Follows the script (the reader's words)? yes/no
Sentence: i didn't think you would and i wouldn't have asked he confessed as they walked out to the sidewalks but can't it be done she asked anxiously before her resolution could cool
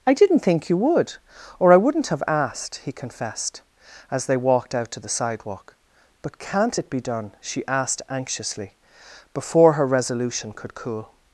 no